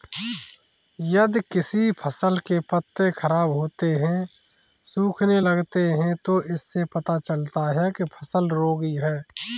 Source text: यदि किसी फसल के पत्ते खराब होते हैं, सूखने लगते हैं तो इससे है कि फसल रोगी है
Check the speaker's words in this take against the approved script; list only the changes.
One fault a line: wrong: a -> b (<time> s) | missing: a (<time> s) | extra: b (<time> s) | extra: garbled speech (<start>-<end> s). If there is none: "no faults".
extra: पता चलता (6.9 s)